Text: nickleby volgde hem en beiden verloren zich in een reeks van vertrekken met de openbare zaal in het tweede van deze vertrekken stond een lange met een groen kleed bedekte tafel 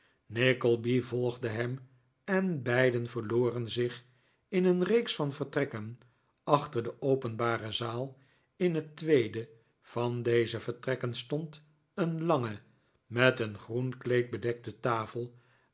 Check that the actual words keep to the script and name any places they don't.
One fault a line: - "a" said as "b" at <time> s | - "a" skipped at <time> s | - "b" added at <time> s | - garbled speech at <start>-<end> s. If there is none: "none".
- "met" said as "achter" at 6.4 s